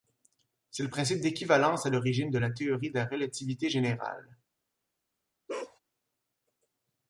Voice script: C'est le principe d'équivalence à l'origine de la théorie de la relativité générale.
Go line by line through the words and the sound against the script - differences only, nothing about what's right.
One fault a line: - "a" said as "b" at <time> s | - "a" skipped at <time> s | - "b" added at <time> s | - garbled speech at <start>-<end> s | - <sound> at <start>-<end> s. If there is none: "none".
- bark at 5.5-5.8 s